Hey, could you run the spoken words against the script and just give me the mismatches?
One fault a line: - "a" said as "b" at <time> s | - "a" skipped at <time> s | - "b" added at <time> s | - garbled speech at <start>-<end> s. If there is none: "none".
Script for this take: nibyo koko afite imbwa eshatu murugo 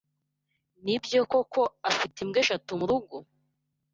none